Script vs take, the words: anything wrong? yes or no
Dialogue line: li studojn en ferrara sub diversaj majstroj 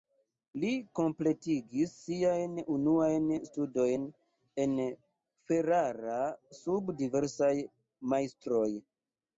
yes